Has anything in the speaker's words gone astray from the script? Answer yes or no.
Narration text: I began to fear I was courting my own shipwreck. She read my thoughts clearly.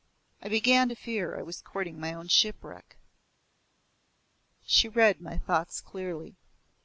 no